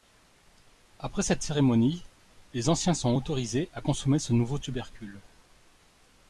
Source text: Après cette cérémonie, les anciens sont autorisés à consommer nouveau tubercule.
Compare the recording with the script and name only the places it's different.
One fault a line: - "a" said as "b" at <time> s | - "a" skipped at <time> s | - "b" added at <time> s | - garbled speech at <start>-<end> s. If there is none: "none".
- "ce" added at 4.2 s